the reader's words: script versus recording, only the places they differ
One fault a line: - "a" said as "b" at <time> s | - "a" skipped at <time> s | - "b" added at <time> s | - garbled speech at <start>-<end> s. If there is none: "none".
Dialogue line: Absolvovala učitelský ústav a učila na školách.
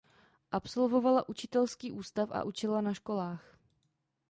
none